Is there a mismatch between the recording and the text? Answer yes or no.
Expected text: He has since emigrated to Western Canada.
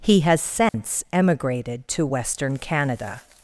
no